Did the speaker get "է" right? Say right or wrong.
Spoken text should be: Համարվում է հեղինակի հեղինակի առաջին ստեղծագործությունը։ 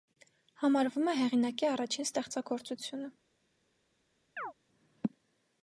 right